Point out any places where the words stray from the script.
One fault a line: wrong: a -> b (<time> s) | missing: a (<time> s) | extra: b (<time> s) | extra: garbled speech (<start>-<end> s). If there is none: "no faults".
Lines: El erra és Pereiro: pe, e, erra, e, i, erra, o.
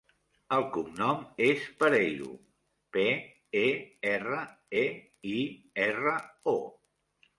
wrong: erra -> cognom (0.8 s)